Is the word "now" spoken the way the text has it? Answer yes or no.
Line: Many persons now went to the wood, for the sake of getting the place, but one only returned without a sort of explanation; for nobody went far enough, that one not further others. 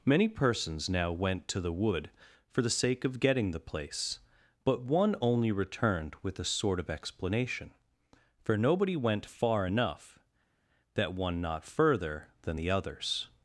yes